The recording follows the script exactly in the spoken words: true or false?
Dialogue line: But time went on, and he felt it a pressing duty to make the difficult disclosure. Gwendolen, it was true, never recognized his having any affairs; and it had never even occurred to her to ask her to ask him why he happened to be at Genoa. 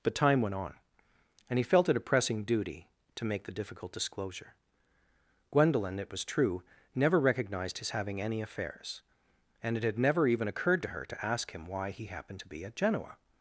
false